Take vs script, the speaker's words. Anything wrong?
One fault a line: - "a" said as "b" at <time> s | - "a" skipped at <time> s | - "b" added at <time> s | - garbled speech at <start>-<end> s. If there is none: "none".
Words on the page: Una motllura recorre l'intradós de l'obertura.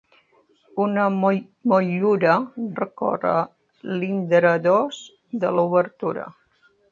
none